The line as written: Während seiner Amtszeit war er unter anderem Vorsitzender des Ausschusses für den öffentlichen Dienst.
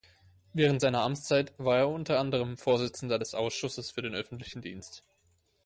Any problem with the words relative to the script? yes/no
no